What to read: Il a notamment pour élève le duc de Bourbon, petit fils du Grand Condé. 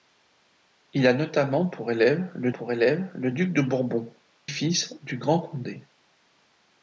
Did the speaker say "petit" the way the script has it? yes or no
no